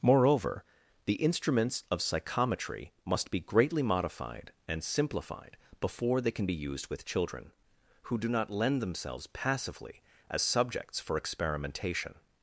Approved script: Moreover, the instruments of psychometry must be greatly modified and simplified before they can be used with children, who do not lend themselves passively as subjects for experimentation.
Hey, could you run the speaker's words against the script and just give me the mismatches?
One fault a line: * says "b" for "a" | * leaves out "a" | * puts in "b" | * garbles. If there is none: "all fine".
all fine